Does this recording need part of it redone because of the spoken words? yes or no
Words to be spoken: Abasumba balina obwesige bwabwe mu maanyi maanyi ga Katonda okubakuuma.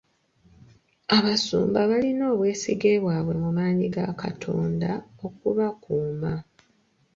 yes